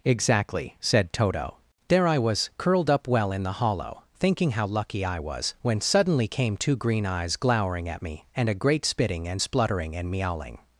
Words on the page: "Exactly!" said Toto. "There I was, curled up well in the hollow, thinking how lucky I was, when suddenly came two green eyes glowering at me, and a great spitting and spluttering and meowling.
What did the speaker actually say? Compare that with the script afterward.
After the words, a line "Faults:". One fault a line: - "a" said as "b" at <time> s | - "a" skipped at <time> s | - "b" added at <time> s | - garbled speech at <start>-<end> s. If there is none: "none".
"Exactly!" said Toto. "There I was, curled up well in the hollow, thinking how lucky I was, when suddenly came two green eyes glowering at me, and a great spitting and spluttering and meowling.
Faults:
none